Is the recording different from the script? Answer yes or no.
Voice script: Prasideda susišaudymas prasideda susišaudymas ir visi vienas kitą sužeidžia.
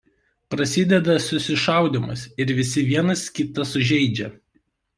yes